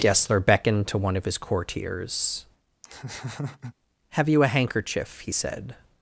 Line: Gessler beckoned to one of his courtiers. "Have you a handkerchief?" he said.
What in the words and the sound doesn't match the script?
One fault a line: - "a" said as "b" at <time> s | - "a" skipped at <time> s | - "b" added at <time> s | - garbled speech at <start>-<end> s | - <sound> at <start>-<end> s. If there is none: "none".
- laugh at 2.8-3.7 s